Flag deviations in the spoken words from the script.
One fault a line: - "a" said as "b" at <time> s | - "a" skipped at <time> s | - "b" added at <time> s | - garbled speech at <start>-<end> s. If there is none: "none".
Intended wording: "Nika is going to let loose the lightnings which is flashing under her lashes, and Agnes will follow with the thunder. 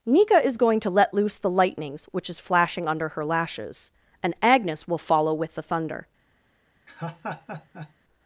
none